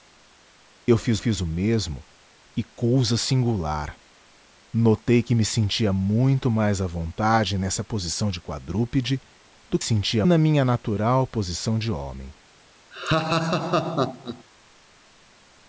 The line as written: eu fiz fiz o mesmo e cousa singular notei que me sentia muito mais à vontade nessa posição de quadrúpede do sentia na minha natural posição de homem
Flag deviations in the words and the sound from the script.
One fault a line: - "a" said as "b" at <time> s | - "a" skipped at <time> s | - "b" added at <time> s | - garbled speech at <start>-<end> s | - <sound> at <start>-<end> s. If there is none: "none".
- laugh at 12.9-14.4 s